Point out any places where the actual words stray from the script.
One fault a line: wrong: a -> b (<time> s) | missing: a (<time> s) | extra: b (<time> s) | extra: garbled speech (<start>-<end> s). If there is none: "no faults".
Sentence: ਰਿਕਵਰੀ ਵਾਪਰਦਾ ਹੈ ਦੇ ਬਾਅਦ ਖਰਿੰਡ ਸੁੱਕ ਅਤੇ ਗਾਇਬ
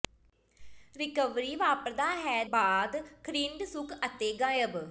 missing: ਦੇ (2.4 s)